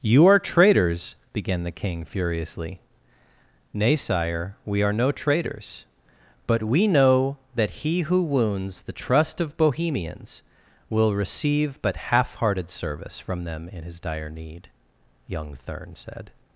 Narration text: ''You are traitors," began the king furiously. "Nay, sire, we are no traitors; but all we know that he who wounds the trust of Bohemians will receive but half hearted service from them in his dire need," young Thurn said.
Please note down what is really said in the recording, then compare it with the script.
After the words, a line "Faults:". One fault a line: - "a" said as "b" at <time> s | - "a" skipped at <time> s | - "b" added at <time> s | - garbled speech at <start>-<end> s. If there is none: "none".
''You are traitors," began the king furiously. "Nay, sire, we are no traitors; but we know that he who wounds the trust of Bohemians will receive but half hearted service from them in his dire need," young Thurn said.
Faults:
- "all" skipped at 6.6 s